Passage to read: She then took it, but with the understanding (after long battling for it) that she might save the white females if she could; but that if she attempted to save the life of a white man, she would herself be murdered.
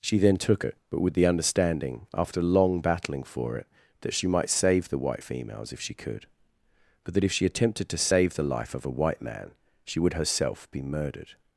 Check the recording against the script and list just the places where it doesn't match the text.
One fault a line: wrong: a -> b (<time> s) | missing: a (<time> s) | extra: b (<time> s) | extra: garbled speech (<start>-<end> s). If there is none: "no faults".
no faults